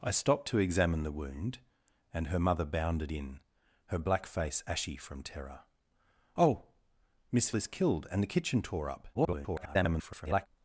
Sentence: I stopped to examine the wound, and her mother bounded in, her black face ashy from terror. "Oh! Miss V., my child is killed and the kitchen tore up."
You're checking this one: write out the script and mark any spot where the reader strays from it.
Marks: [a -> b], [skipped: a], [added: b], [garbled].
I stopped to examine the wound, and her mother bounded in, her black face ashy from terror. "Oh! Miss [skipped: V., my child] is killed and the kitchen tore up." [garbled]